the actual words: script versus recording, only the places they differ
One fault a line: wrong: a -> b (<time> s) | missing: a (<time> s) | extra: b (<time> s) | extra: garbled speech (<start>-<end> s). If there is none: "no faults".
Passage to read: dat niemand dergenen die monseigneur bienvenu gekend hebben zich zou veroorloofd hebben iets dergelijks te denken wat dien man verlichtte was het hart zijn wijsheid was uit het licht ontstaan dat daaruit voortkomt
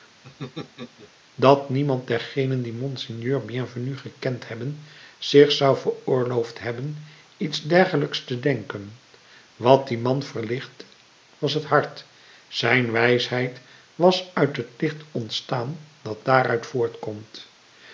no faults